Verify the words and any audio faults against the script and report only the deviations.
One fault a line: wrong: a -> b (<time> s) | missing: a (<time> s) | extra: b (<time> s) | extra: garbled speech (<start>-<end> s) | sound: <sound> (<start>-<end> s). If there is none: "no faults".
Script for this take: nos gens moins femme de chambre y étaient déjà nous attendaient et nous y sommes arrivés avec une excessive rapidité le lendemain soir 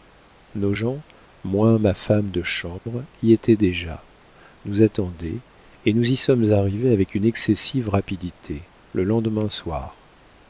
extra: ma (1.8 s)
sound: dropout (2.8-2.9 s)